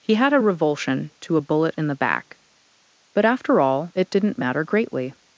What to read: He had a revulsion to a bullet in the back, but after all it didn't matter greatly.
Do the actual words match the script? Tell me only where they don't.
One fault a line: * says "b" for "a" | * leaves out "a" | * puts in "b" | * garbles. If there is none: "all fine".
all fine